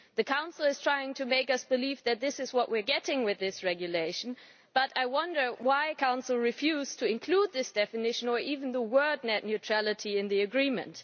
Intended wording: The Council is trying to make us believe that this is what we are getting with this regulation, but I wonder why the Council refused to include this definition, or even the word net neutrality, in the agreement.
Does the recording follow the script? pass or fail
pass